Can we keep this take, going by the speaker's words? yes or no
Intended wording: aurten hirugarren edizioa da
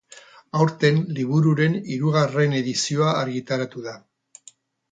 no